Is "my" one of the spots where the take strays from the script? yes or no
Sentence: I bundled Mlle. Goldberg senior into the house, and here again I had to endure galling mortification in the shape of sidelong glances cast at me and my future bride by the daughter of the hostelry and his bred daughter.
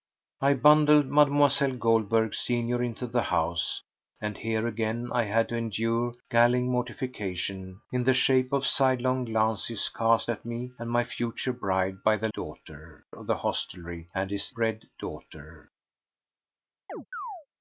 no